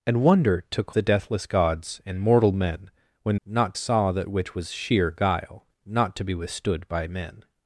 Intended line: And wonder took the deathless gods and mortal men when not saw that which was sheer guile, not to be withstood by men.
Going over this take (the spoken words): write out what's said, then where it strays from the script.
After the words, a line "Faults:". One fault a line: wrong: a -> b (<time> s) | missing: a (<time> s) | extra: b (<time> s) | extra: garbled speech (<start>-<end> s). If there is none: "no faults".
And wonder took the deathless gods and mortal men when not saw that which was sheer guile, not to be withstood by men.
Faults:
no faults